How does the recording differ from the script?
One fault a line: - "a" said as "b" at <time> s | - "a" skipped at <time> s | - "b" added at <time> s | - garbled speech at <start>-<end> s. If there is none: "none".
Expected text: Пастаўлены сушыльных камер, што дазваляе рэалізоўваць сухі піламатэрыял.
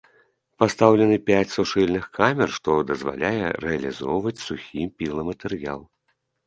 - "пяць" added at 1.3 s